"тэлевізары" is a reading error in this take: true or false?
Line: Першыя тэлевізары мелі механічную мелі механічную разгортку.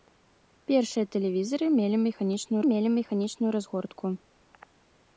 false